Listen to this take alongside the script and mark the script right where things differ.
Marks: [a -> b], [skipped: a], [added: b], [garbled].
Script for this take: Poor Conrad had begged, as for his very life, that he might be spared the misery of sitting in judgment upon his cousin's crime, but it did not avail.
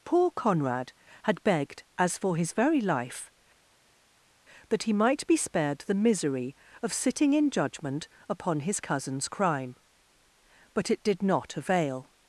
Poor Conrad had begged, as for his very life, that he might be spared the misery of sitting in judgment upon his cousin's crime, but it did not avail.